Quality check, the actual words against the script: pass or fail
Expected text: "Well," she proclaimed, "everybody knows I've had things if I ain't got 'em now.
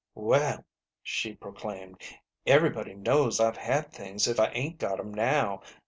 pass